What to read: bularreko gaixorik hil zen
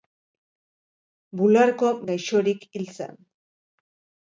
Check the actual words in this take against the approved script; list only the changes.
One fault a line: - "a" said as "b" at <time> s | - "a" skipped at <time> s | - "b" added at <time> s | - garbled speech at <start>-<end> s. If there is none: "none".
none